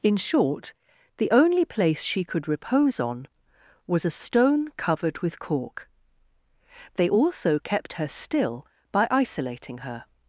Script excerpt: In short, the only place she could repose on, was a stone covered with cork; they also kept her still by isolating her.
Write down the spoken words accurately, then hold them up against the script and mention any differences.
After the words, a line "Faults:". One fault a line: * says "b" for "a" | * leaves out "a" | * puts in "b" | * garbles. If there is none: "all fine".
In short, the only place she could repose on, was a stone covered with cork; they also kept her still by isolating her.
Faults:
all fine